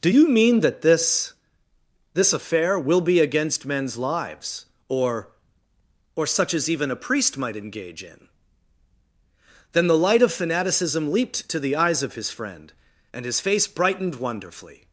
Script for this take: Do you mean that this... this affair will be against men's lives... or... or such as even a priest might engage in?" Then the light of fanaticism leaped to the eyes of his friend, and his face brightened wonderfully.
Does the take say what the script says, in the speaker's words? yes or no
yes